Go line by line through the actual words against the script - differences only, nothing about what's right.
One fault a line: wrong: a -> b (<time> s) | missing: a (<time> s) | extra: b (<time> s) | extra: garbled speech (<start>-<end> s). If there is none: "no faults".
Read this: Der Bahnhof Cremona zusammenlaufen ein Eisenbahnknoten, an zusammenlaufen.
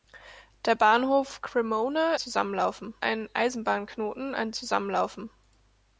no faults